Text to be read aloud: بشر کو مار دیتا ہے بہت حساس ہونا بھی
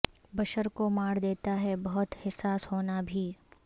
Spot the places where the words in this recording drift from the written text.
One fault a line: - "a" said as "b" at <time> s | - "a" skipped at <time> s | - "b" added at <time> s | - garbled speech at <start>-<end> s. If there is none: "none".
none